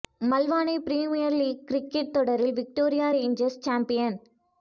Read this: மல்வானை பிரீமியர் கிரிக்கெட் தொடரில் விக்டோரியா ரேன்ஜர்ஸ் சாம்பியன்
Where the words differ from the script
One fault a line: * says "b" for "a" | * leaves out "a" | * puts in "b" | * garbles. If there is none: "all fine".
* puts in "லீக்"